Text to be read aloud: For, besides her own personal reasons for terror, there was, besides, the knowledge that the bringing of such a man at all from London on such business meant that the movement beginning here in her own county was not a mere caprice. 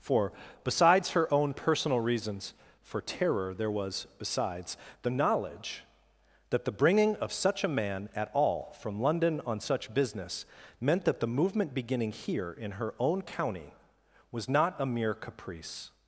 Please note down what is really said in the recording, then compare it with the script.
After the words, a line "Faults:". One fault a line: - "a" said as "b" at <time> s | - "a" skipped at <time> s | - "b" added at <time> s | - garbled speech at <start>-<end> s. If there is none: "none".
For, besides her own personal reasons for terror, there was, besides, the knowledge that the bringing of such a man at all from London on such business meant that the movement beginning here in her own county was not a mere caprice.
Faults:
none